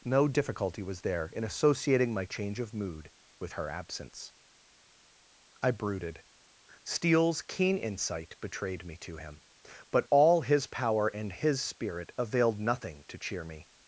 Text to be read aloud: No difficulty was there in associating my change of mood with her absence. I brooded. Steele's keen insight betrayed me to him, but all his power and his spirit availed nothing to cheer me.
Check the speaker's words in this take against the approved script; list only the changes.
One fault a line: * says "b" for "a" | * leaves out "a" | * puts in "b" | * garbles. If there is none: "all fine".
all fine